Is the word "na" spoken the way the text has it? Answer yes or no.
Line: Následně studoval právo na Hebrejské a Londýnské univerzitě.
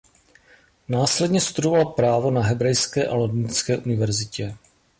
yes